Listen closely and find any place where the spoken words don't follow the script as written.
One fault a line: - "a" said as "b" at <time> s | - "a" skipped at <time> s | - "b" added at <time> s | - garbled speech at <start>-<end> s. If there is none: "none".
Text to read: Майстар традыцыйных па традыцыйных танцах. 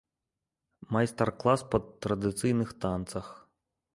- "традыцыйных" said as "клас" at 1.4 s